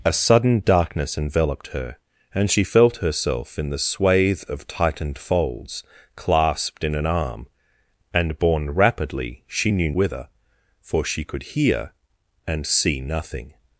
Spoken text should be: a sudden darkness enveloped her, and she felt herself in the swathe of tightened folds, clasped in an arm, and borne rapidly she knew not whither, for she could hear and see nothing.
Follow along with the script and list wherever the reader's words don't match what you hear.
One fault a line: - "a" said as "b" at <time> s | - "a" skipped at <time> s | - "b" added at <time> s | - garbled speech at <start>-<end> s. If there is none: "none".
- "not" skipped at 9.9 s